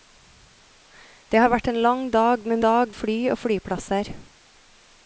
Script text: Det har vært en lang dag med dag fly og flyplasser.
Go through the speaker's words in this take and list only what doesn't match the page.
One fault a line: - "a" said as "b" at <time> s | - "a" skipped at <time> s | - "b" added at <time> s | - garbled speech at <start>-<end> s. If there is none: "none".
none